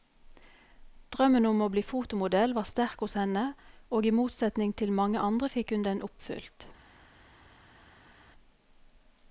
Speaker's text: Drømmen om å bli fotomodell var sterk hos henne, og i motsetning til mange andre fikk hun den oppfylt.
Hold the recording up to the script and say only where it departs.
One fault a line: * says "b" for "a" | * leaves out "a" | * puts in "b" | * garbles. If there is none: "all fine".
all fine